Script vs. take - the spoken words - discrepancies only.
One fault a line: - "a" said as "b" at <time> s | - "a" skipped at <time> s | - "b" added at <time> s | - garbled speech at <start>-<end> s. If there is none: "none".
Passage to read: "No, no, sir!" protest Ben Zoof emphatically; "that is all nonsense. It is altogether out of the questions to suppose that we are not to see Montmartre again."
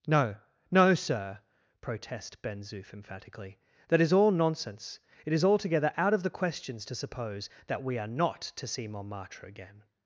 none